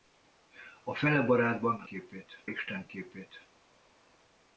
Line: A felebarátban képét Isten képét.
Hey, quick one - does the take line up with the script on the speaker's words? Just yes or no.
yes